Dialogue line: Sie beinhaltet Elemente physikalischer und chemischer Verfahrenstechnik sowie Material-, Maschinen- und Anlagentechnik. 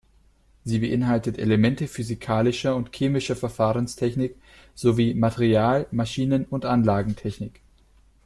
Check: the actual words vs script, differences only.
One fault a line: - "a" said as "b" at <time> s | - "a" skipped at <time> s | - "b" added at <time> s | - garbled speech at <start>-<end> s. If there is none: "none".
none